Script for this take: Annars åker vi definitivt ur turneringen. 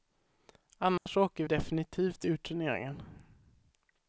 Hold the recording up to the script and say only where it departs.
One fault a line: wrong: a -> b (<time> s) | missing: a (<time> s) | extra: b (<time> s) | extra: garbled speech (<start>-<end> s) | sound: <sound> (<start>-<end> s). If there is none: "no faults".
sound: dropout (1.0-1.1 s)
missing: vi (1.4 s)